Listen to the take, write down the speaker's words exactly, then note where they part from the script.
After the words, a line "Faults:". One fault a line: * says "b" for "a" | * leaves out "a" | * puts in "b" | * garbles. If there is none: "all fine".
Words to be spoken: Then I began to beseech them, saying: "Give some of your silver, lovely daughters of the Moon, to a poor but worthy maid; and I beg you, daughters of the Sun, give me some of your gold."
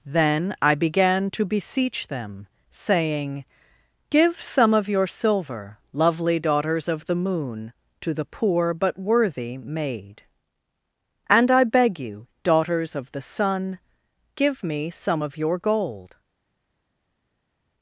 Then I began to beseech them, saying: "Give some of your silver, lovely daughters of the Moon, to the poor but worthy maid; and I beg you, daughters of the Sun, give me some of your gold."
Faults:
* says "the" for "a"